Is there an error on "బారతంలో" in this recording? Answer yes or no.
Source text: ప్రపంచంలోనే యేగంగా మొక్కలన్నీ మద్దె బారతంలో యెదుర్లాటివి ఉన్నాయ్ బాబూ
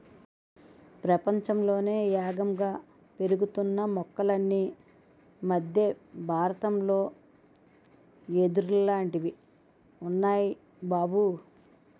no